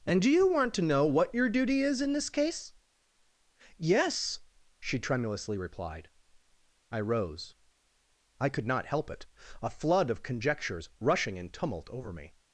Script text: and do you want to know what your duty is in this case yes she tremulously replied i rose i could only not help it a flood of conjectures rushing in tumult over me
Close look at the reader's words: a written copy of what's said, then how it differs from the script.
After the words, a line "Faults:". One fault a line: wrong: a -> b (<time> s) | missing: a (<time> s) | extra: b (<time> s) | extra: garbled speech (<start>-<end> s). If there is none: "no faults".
and do you want to know what your duty is in this case yes she tremulously replied i rose i could not help it a flood of conjectures rushing in tumult over me
Faults:
missing: only (8.7 s)